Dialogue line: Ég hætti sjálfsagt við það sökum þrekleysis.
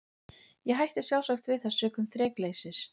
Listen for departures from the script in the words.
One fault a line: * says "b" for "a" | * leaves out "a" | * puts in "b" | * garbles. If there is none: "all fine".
all fine